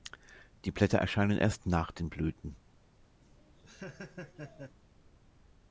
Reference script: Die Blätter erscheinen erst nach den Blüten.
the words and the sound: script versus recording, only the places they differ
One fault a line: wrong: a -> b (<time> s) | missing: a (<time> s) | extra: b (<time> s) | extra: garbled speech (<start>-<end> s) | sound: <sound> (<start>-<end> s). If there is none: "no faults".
sound: laugh (3.2-4.8 s)